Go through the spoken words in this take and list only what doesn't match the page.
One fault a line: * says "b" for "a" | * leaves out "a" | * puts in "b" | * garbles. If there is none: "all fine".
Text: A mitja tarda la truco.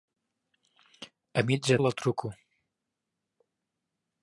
* leaves out "tarda"